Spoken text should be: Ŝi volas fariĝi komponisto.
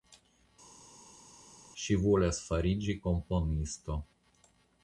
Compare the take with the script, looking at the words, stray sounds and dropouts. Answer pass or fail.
pass